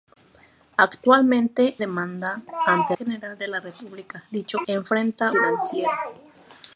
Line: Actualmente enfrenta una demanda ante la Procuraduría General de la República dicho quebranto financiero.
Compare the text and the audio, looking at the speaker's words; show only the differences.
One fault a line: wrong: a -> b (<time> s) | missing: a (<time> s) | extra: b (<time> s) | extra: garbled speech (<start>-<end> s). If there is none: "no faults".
missing: enfrenta una (1.8 s)
missing: la Procuraduría (3.0 s)
wrong: quebranto -> enfrenta (4.7 s)